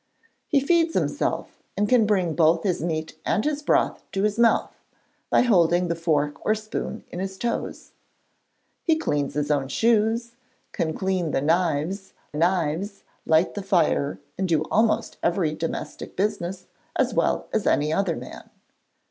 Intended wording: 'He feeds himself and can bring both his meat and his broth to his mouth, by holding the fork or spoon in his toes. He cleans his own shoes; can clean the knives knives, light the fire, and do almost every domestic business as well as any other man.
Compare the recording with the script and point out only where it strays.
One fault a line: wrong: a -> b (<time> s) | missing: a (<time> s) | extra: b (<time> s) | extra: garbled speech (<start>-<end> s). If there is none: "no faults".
no faults